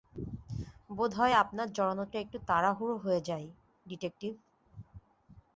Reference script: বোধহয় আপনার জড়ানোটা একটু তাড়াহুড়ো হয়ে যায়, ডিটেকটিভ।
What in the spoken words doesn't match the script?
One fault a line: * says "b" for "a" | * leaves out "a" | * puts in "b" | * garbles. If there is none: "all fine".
all fine